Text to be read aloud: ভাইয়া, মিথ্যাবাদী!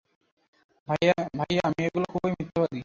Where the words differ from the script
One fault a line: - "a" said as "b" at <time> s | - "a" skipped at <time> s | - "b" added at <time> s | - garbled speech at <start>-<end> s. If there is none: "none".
- "মেয়েগুলো খুবই" added at 1.7 s